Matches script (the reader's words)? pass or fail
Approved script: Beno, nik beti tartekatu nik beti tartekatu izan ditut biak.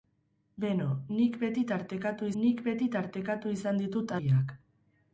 pass